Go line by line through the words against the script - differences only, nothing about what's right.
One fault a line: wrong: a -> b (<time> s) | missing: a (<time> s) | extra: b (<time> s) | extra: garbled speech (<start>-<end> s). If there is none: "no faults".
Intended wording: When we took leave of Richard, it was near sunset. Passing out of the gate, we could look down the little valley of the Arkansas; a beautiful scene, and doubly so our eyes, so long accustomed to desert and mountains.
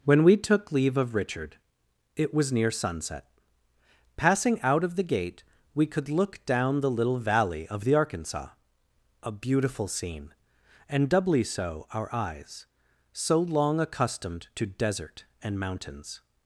no faults